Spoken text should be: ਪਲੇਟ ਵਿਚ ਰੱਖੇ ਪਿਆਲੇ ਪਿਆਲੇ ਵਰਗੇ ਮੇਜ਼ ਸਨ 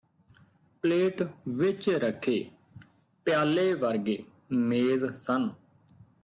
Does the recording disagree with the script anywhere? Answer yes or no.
yes